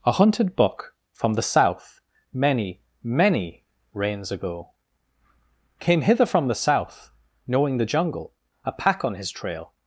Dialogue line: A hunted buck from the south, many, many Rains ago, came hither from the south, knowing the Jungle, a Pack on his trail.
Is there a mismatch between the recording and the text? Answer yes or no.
no